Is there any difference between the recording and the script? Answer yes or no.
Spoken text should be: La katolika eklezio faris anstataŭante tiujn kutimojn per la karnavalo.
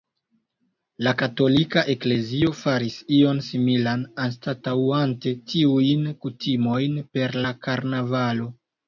yes